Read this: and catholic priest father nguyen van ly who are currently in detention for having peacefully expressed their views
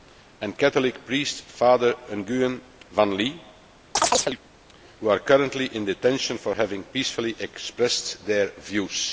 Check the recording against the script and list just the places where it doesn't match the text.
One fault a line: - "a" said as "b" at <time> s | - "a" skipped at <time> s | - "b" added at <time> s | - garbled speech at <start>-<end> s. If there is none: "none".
none